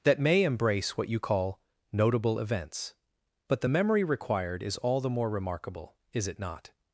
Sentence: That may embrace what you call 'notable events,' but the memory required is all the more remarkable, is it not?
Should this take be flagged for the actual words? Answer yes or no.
no